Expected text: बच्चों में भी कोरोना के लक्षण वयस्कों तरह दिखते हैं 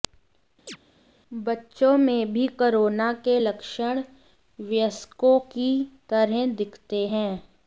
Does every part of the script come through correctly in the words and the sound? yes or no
no